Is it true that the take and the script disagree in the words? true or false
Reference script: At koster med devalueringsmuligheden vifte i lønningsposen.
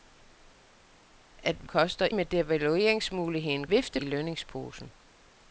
false